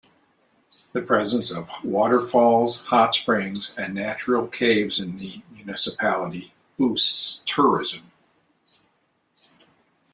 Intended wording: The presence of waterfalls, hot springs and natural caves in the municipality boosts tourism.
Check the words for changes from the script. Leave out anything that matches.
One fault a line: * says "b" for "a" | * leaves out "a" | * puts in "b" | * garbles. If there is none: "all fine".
all fine